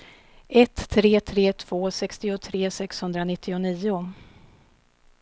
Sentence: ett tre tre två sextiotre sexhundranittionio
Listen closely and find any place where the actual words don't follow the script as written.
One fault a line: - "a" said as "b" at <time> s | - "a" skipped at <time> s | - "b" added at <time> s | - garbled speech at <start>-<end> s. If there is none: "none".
none